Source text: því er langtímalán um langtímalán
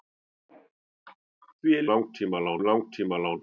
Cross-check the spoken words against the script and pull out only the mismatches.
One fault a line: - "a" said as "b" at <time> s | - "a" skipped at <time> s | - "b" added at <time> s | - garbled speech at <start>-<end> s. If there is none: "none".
none